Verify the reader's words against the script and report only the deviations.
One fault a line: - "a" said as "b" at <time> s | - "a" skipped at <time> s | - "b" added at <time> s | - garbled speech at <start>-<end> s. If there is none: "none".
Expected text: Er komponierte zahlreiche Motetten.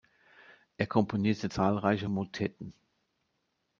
none